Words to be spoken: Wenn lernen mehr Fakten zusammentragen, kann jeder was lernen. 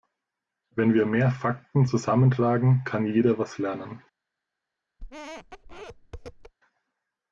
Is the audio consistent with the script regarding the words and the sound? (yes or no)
no